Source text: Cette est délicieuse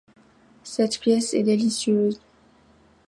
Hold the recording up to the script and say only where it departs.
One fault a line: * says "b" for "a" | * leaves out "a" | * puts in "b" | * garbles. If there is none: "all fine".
* puts in "pièce"